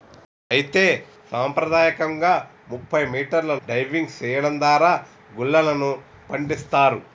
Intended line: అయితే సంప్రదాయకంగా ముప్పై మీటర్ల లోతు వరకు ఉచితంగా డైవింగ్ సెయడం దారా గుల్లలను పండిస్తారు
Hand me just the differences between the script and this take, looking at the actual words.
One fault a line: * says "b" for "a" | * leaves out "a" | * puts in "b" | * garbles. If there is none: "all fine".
* leaves out "లోతు వరకు ఉచితంగా"